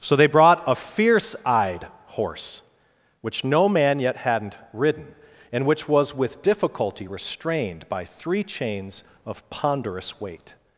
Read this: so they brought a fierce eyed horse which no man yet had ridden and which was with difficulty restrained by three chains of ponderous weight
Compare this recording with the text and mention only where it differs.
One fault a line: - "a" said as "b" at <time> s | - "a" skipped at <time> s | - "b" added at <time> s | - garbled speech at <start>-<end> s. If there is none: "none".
- "had" said as "hadn't" at 4.2 s